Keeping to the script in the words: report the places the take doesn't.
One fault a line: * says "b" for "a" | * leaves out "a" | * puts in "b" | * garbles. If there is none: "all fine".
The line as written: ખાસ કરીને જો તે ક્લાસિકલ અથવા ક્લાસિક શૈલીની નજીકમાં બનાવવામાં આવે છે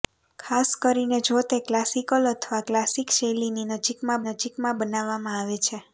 * puts in "નજીકમાં"